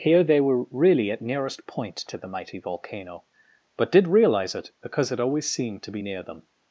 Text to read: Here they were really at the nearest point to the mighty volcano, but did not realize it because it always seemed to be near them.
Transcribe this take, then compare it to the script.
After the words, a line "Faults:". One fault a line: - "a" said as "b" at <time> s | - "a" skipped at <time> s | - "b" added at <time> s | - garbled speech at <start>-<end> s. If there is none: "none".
Here they were really at nearest point to the mighty volcano, but did realize it because it always seemed to be near them.
Faults:
- "the" skipped at 1.2 s
- "not" skipped at 4.1 s